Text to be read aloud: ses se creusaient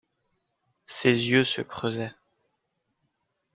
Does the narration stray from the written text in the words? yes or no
yes